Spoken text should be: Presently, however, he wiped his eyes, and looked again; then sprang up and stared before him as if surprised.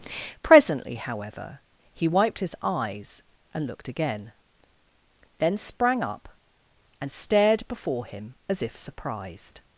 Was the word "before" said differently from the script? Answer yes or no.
no